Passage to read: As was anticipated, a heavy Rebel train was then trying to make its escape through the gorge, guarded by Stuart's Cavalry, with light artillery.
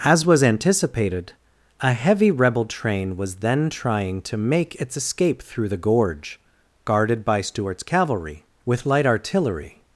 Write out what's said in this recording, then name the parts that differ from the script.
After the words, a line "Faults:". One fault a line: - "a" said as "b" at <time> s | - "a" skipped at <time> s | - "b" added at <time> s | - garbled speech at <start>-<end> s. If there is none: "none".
As was anticipated, a heavy Rebel train was then trying to make its escape through the gorge, guarded by Stuart's Cavalry, with light artillery.
Faults:
none